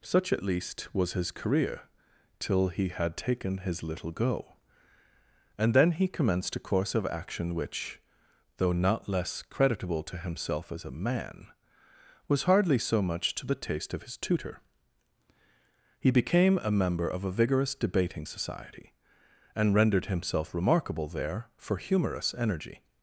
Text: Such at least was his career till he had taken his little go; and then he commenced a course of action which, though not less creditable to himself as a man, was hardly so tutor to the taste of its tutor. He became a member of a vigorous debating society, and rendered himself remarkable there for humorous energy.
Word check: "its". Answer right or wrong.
wrong